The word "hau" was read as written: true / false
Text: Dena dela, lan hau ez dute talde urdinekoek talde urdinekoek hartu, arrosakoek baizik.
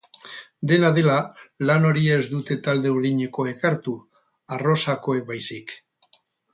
false